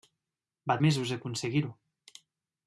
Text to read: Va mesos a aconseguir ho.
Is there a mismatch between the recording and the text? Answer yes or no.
no